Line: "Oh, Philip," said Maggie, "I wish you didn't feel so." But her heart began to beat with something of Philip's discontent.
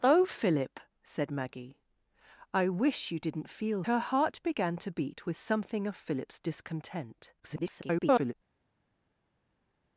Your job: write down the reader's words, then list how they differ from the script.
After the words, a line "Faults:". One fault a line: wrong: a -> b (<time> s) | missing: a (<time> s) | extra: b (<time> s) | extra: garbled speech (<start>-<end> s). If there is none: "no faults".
"Oh, Philip," said Maggie, "I wish you didn't feel her heart began to beat with something of Philip's discontent. [garbled]
Faults:
missing: so But (3.8 s)
extra: garbled speech (7.4-8.3 s)